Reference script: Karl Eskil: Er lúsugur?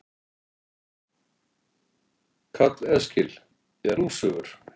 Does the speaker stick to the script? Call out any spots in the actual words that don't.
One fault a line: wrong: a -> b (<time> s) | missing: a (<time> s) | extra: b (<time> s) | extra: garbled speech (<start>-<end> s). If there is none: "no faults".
no faults